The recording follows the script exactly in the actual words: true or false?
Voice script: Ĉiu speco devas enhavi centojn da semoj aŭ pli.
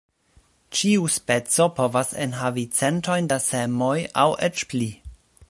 false